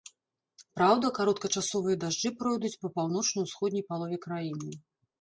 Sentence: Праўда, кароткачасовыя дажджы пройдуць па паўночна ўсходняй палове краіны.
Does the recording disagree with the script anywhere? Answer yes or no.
no